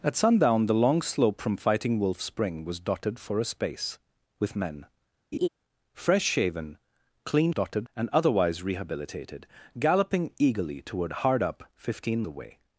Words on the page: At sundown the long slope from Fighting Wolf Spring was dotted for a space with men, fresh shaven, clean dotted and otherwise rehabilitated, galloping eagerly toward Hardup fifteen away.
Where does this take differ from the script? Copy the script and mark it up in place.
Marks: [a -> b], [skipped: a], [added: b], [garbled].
At sundown the long slope from Fighting Wolf Spring was dotted for a space with men, fresh shaven, clean dotted and otherwise rehabilitated, galloping eagerly toward Hardup fifteen away.